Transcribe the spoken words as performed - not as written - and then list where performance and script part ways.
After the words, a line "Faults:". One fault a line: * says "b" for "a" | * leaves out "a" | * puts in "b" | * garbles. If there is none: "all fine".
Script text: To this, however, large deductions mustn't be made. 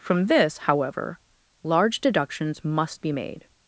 From this, however, large deductions must be made.
Faults:
* says "From" for "To"
* says "must" for "mustn't"